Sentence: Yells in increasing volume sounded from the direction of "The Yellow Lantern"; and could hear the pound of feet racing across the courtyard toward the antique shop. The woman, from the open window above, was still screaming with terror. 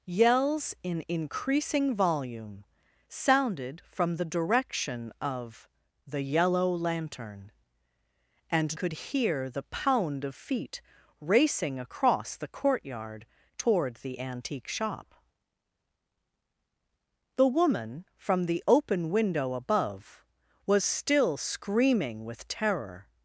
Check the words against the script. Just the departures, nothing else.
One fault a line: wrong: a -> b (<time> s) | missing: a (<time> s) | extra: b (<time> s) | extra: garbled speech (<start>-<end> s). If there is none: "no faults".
no faults